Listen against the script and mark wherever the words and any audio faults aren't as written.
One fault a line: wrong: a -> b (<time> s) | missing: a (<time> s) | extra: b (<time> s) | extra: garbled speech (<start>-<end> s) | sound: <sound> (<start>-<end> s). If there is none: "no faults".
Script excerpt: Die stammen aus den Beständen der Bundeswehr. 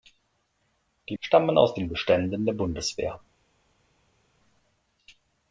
no faults